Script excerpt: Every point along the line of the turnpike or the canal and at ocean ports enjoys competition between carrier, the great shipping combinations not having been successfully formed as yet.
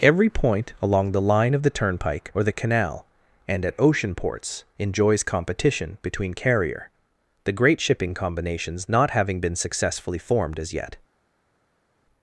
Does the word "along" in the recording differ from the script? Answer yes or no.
no